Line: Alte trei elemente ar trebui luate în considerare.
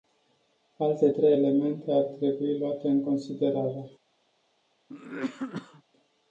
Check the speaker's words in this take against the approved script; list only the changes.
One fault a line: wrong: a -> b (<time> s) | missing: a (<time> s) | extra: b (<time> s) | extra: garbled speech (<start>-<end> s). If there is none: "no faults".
no faults